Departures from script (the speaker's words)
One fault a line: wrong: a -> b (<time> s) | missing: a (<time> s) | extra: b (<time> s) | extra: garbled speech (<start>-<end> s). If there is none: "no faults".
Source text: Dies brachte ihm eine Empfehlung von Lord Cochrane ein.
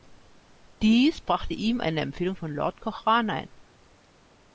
no faults